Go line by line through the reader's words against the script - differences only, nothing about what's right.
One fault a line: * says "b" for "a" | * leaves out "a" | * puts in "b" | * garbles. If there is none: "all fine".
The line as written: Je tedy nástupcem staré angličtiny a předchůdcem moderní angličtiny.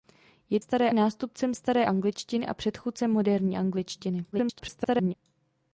* says "staré" for "tedy"
* garbles